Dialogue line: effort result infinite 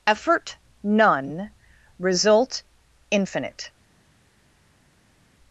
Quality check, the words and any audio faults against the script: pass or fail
fail